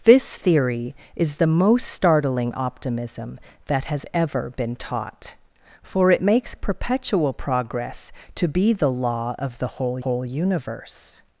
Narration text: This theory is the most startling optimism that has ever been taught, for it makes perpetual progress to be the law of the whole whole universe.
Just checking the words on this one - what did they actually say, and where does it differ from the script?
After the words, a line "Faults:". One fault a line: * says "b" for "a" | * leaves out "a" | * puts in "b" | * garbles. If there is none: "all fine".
This theory is the most startling optimism that has ever been taught, for it makes perpetual progress to be the law of the whole whole universe.
Faults:
all fine